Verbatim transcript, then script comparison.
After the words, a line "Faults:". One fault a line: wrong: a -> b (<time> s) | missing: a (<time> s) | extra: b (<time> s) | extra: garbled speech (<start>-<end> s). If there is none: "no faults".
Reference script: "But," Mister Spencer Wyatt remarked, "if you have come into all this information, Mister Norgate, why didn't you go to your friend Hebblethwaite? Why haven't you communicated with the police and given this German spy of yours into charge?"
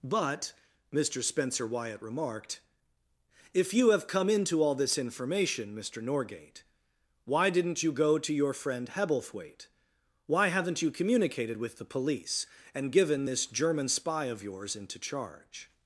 "But," Mister Spencer Wyatt remarked, "if you have come into all this information, Mister Norgate, why didn't you go to your friend Hebblethwaite? Why haven't you communicated with the police and given this German spy of yours into charge?"
Faults:
no faults